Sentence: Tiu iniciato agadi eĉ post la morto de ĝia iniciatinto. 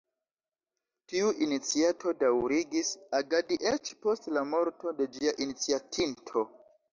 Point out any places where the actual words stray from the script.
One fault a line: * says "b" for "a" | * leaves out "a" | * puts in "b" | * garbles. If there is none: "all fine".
* puts in "daŭrigis"